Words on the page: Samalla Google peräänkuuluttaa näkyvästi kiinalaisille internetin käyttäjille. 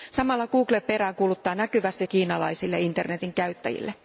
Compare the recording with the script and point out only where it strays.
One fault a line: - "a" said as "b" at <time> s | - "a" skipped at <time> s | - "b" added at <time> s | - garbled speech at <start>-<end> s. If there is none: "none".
none